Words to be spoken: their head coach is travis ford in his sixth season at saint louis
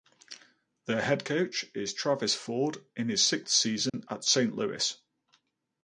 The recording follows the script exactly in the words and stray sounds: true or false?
false